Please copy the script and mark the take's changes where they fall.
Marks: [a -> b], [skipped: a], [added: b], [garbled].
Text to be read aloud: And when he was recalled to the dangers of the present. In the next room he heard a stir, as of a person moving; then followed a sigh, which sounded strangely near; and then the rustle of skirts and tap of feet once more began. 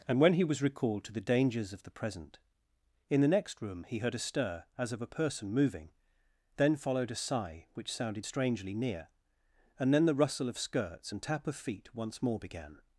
And when he was recalled to the dangers of the present. In the next room he heard a stir, as of a person moving; then followed a sigh, which sounded strangely near; and then the rustle of skirts and tap of feet once more began.